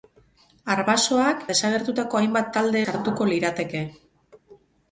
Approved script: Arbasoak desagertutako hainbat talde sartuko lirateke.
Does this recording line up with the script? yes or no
yes